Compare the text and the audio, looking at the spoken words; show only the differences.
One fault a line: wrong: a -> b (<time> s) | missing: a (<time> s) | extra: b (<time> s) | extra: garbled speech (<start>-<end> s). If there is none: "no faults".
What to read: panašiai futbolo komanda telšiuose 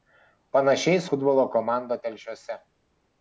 no faults